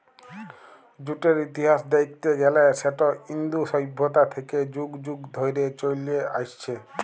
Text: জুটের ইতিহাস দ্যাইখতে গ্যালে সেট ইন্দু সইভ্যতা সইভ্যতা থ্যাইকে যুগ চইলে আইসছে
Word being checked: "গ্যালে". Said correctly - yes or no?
yes